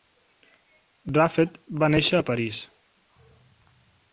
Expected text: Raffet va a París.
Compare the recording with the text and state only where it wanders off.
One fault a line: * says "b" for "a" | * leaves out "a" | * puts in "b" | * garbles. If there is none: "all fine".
* puts in "néixer"